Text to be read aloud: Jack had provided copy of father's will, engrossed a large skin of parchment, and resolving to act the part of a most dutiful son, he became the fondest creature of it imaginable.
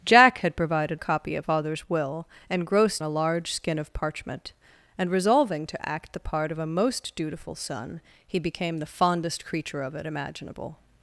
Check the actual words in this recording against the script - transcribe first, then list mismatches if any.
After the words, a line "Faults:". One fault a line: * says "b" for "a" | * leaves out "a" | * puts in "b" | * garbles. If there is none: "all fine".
Jack had provided copy of father's will, engrossed a large skin of parchment, and resolving to act the part of a most dutiful son, he became the fondest creature of it imaginable.
Faults:
all fine